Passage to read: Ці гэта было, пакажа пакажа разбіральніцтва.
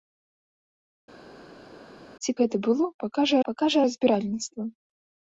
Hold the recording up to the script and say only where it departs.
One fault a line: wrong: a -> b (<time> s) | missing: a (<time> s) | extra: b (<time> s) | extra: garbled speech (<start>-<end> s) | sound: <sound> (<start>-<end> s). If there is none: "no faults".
no faults